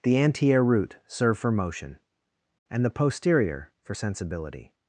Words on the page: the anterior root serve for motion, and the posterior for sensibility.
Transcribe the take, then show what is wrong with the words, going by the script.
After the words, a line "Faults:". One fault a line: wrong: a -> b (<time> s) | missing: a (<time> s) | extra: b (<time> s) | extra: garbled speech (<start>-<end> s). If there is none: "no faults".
the anterior root serve for motion, and the posterior for sensibility.
Faults:
no faults